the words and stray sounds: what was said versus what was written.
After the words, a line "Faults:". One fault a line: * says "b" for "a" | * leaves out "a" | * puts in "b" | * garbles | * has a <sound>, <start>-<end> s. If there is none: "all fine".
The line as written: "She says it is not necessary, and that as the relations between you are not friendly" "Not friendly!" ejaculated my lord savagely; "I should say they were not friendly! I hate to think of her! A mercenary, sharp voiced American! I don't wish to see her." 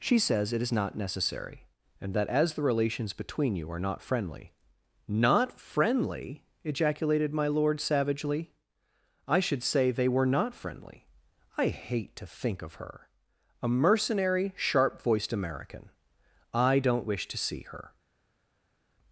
"She says it is not necessary, and that as the relations between you are not friendly" "Not friendly!" ejaculated my lord savagely; "I should say they were not friendly! I hate to think of her! A mercenary, sharp voiced American! I don't wish to see her."
Faults:
all fine